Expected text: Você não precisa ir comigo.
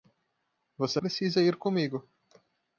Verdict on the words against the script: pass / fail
fail